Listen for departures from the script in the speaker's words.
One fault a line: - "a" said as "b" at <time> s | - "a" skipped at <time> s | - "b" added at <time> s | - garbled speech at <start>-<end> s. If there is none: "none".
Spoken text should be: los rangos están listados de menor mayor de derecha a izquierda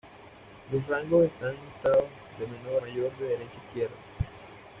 none